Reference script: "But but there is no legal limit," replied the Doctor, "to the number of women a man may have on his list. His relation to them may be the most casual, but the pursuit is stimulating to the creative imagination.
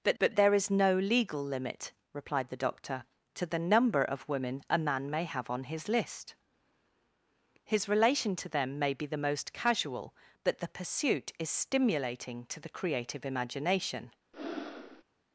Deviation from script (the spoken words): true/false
false